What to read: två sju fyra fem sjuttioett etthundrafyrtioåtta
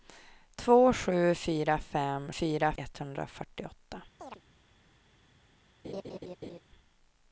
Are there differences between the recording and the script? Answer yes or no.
yes